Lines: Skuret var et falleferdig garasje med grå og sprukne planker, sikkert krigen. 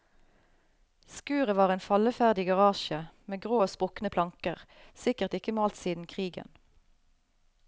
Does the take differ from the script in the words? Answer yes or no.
yes